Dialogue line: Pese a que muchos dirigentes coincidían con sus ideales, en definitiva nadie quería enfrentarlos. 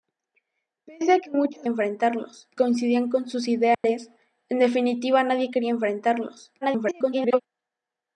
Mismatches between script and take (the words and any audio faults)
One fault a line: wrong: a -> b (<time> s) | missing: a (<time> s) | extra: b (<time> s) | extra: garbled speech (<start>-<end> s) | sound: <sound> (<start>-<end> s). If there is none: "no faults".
wrong: dirigentes -> enfrentarlos (1.7 s)
sound: dropout (3.7-3.8 s)
extra: garbled speech (6.6-7.4 s)